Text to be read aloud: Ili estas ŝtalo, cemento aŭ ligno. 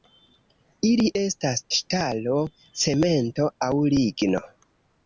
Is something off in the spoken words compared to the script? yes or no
no